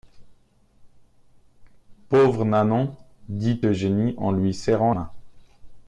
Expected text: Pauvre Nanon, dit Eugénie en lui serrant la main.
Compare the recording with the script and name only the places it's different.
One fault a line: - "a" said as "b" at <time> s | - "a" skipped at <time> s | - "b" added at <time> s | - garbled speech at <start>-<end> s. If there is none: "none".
- "la" skipped at 4.9 s